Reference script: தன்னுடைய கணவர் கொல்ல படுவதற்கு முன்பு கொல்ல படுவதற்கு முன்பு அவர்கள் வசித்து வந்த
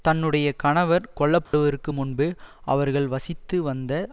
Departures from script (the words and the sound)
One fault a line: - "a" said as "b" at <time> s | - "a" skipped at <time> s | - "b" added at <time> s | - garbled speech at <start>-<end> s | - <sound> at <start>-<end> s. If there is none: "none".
- dropout at 1.5-1.5 s
- "கொல்ல படுவதற்கு முன்பு" skipped at 2.3 s